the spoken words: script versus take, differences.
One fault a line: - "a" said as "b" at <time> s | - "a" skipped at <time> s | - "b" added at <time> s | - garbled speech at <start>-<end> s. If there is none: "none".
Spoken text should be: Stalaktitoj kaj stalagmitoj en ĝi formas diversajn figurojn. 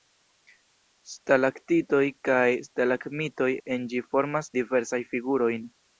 none